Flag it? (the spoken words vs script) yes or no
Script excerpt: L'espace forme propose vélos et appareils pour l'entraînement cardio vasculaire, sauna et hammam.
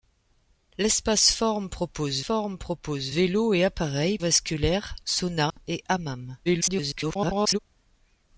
yes